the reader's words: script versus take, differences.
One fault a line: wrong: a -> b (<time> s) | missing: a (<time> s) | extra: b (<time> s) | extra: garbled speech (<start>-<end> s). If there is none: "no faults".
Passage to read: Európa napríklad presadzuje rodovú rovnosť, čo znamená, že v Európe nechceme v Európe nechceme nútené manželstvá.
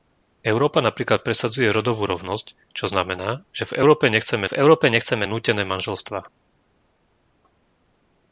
no faults